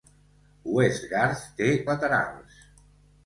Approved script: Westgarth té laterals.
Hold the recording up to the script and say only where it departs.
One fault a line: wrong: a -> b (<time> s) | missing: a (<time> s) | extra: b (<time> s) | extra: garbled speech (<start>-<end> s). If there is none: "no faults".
no faults